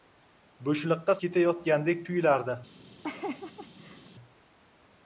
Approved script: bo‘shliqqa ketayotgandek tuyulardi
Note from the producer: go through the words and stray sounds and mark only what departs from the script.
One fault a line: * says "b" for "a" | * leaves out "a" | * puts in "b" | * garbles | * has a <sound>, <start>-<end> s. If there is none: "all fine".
* has a laugh, 3.0-4.1 s